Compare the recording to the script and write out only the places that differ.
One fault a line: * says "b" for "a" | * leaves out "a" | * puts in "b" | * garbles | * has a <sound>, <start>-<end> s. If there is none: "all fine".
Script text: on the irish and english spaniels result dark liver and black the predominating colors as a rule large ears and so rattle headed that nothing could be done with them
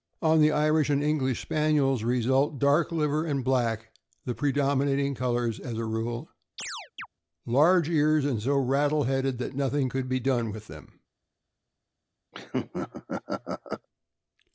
* has a chirp, 6.6-7.1 s
* has a laugh, 12.3-13.9 s